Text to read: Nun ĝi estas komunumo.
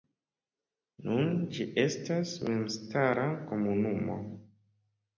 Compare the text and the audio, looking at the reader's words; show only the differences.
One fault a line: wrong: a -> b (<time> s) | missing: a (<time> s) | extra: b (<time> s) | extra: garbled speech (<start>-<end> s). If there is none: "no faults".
extra: memstara (2.5 s)